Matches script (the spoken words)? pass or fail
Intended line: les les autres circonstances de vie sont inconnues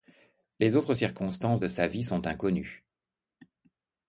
fail